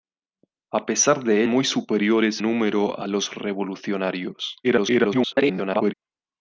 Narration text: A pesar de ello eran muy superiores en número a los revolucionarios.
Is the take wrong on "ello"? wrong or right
wrong